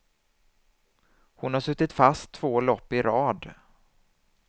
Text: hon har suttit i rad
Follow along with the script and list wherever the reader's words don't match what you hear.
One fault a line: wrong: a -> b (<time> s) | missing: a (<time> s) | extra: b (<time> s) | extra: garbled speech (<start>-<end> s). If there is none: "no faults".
extra: fast två lopp (1.9 s)